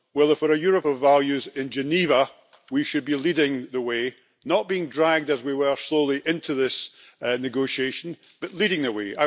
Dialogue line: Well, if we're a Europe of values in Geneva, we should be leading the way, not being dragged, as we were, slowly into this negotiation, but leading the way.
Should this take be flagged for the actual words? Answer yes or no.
no